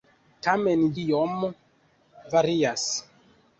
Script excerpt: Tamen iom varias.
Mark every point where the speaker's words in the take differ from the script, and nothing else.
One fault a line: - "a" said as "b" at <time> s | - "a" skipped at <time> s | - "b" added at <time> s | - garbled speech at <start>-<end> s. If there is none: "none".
none